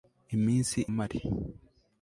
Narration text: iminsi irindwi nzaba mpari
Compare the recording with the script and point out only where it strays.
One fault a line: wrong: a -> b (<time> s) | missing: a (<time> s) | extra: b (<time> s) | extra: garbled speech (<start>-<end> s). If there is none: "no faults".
missing: irindwi nzaba (0.8 s)